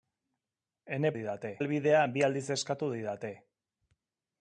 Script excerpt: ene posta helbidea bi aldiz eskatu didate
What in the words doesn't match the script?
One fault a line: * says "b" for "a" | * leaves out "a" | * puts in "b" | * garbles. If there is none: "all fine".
* says "didate" for "posta"